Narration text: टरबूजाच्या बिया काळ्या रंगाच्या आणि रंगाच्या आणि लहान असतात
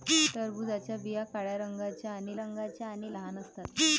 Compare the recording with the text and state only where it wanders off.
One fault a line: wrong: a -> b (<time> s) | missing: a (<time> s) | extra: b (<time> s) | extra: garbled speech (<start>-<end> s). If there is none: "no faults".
no faults